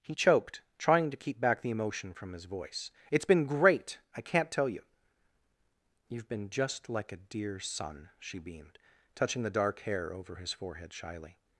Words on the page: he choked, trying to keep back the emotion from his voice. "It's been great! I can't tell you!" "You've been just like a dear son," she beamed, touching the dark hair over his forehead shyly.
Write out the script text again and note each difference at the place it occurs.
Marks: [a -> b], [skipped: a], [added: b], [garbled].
he choked, trying to keep back the emotion from his voice. "It's been great! I can't tell you!" "You've been just like a dear son," she beamed, touching the dark hair over his forehead shyly.